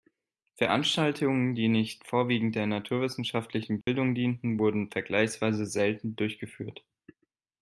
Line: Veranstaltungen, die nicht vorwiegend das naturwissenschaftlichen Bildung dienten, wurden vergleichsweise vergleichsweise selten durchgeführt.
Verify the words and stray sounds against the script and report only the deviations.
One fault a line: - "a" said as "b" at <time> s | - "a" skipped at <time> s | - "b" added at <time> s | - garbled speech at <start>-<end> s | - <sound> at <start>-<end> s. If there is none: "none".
- "das" said as "der" at 2.5 s
- dropout at 3.8-3.9 s
- "vergleichsweise" skipped at 5.6 s